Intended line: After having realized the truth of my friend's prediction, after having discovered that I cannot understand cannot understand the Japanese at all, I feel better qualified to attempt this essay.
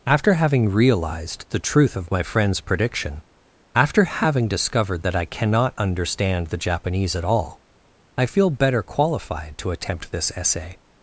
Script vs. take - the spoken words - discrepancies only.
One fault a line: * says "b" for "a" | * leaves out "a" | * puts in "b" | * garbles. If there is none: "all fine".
* leaves out "cannot understand"